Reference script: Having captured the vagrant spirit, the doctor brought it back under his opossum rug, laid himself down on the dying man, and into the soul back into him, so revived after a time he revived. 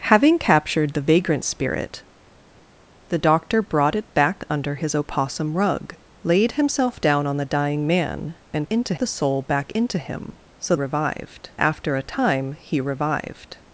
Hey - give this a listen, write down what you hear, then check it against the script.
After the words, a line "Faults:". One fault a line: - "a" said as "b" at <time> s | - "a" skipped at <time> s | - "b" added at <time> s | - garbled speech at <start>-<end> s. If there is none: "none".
Having captured the vagrant spirit, the doctor brought it back under his opossum rug, laid himself down on the dying man, and into the soul back into him, so revived after a time he revived.
Faults:
none